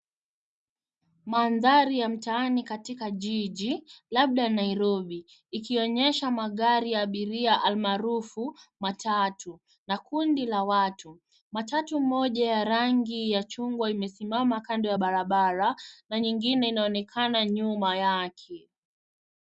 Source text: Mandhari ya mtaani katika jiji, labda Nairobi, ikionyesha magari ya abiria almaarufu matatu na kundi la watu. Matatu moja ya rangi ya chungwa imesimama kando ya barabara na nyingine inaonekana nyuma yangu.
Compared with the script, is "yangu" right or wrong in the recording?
wrong